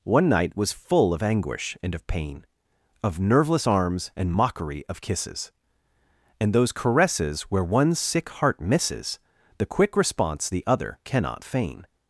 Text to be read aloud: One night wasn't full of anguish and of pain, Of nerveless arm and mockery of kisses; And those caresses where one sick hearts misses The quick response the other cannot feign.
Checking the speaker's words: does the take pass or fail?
fail